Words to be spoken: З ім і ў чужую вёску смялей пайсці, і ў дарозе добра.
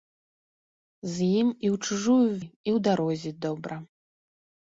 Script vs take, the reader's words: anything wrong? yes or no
yes